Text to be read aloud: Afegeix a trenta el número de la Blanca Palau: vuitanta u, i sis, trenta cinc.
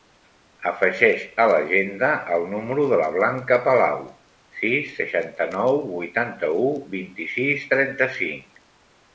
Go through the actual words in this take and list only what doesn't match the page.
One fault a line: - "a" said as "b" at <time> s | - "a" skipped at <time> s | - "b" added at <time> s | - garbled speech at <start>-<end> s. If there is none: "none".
- "trenta" said as "l'agenda" at 1.5 s
- "sis seixanta nou" added at 4.6 s
- "vint" added at 6.9 s